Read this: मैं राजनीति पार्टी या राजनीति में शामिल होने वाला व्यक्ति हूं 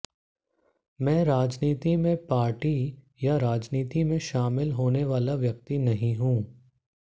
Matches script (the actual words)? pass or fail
fail